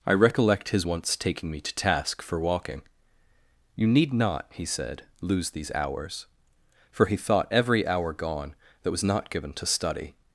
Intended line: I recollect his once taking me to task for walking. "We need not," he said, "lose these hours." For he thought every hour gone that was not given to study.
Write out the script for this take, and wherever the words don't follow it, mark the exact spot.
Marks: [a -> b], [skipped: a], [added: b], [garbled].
I recollect his once taking me to task for walking. ["We -> You] need not," he said, "lose these hours." For he thought every hour gone that was not given to study.